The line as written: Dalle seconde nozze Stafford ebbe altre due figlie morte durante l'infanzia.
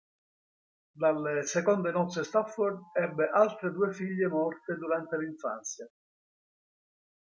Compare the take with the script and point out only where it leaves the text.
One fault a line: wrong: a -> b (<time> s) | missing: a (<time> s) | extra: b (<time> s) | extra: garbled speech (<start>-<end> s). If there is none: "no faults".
no faults